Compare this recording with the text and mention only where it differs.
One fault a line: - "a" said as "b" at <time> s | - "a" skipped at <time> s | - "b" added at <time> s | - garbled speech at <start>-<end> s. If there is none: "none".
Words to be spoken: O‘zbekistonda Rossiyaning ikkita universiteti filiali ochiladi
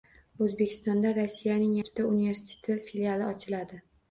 none